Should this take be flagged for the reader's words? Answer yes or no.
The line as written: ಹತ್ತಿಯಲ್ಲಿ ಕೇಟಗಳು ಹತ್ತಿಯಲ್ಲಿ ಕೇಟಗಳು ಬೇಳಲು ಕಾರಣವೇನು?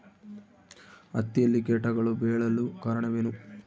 yes